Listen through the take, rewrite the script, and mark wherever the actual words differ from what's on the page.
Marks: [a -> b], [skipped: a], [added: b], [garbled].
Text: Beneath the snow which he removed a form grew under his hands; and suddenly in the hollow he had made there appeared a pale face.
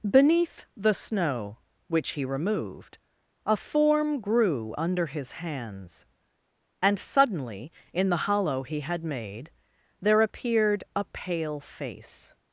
Beneath the snow which he removed a form grew under his hands; and suddenly in the hollow he had made there appeared a pale face.